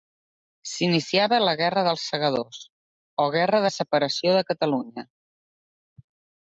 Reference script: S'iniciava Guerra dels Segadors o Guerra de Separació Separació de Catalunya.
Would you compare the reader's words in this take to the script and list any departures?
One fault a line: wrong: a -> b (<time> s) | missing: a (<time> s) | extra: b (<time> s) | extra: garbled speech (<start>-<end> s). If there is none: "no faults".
extra: la (1.4 s)
missing: Separació (4.4 s)